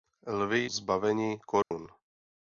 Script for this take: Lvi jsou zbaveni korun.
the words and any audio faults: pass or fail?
fail